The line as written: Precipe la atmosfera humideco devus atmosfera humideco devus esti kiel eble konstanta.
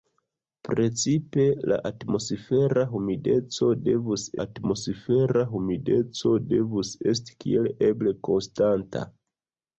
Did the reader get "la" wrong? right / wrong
right